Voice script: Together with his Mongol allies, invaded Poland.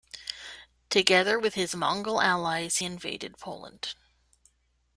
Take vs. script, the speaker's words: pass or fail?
pass